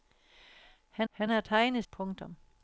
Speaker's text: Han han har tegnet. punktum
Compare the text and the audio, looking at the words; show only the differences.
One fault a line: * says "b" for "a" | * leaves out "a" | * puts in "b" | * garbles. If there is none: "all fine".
all fine